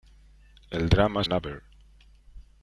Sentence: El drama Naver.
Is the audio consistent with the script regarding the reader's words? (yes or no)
yes